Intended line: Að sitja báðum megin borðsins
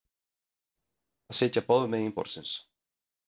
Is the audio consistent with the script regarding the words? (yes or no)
yes